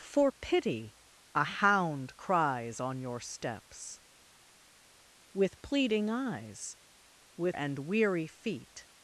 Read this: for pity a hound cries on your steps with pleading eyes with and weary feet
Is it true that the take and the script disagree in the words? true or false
false